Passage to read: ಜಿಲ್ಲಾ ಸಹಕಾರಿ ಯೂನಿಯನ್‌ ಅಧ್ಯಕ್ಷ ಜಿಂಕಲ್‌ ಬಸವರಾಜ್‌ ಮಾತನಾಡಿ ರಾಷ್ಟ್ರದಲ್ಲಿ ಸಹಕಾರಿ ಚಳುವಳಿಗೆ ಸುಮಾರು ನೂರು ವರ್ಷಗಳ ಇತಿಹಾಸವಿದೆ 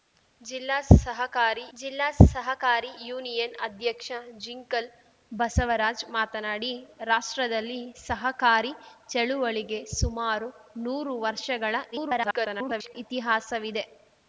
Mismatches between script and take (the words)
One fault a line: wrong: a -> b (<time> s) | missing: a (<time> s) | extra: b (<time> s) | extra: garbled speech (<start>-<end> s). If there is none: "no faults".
extra: ಜಿಲ್ಲಾ ಸಹಕಾರಿ (1.8 s)
extra: garbled speech (11.9-13.0 s)